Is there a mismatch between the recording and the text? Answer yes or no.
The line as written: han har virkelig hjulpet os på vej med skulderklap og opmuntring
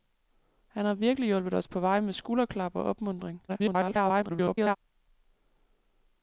yes